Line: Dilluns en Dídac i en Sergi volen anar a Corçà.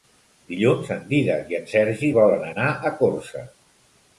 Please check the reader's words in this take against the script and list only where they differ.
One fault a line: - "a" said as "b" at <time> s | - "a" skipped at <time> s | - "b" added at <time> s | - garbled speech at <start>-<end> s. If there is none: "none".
none